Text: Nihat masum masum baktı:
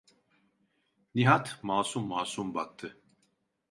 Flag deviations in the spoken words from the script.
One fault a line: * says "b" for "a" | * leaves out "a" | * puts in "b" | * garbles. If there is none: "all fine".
all fine